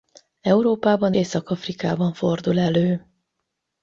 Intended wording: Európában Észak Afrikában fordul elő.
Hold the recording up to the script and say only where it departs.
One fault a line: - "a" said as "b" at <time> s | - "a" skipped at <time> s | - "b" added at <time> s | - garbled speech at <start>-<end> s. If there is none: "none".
none